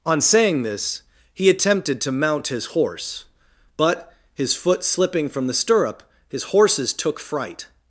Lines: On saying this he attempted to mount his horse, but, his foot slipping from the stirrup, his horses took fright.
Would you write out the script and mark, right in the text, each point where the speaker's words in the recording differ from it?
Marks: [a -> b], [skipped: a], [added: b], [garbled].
On saying this he attempted to mount his horse, but, his foot slipping from the stirrup, his horses took fright.